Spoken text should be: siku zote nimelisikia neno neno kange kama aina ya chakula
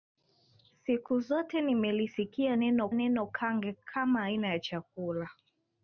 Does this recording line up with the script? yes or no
yes